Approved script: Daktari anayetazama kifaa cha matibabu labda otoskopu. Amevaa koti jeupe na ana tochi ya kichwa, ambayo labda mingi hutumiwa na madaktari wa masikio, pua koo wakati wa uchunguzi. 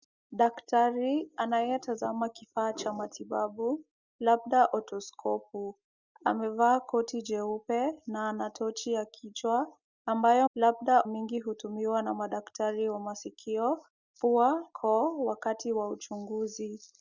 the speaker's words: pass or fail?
pass